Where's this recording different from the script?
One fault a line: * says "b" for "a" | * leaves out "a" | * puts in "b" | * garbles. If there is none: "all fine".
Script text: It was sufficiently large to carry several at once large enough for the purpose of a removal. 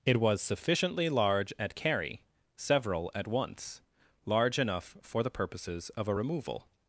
* says "at" for "to"
* says "purposes" for "purpose"